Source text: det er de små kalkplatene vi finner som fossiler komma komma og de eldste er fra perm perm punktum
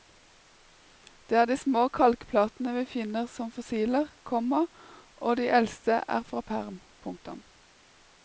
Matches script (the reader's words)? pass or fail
fail